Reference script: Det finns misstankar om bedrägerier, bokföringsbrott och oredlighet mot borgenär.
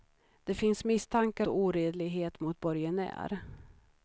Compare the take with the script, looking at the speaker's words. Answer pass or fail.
fail